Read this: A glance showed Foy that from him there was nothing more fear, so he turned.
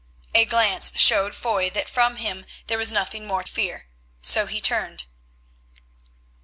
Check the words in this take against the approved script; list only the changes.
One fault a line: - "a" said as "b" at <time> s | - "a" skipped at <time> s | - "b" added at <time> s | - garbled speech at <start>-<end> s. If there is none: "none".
none